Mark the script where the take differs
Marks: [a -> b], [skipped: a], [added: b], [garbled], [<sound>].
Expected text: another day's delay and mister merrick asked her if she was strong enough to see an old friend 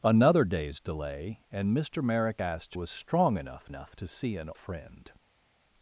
another day's delay and mister merrick asked [skipped: her if she] was strong enough [added: enough] to see an [skipped: old] friend